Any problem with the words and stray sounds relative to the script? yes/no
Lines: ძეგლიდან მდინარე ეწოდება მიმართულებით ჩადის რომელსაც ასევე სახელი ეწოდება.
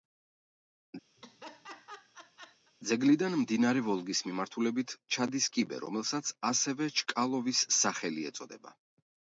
yes